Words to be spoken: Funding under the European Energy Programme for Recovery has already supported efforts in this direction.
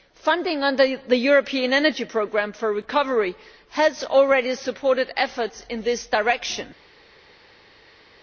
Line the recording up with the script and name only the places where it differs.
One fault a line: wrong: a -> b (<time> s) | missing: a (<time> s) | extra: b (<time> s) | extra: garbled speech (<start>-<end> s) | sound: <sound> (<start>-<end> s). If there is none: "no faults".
no faults